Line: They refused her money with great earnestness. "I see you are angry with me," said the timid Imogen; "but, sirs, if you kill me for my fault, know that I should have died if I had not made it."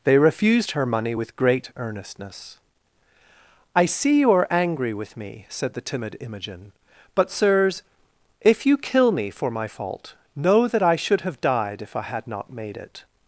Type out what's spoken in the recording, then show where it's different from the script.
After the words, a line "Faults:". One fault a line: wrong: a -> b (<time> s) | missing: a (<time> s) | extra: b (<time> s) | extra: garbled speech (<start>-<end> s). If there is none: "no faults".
They refused her money with great earnestness. "I see you are angry with me," said the timid Imogen; "but, sirs, if you kill me for my fault, know that I should have died if I had not made it."
Faults:
no faults